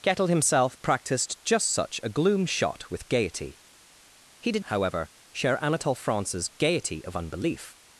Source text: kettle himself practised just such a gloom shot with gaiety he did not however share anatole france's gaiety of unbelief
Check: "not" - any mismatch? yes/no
yes